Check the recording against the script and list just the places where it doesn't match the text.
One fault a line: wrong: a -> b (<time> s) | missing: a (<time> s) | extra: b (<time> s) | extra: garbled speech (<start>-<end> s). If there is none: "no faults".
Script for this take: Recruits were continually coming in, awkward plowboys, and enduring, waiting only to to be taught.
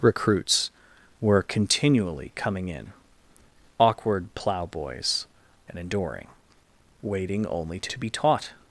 no faults